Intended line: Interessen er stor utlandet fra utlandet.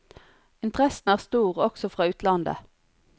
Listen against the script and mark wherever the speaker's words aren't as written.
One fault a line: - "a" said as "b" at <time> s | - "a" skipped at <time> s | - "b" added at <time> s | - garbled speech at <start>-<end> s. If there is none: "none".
- "utlandet" said as "også" at 1.6 s